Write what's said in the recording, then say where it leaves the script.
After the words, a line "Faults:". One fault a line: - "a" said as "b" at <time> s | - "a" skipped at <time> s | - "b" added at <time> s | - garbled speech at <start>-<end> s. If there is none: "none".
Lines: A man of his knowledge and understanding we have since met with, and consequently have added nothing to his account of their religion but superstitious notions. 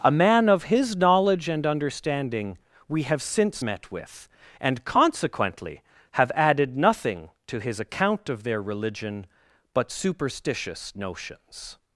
A man of his knowledge and understanding we have since met with, and consequently have added nothing to his account of their religion but superstitious notions.
Faults:
none